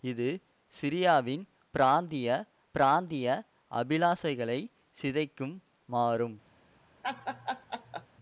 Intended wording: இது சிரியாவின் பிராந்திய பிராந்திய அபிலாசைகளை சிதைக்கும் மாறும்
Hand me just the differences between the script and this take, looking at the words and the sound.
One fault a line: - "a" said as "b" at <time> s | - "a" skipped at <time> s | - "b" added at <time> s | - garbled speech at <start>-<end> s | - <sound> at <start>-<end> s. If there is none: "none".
- laugh at 7.0-8.1 s